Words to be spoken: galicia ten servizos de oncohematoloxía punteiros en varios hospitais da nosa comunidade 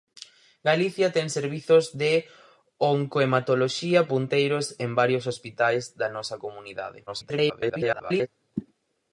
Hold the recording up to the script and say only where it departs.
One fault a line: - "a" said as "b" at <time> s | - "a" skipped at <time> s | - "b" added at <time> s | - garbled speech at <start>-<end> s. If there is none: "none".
- garbled speech at 7.1-8.3 s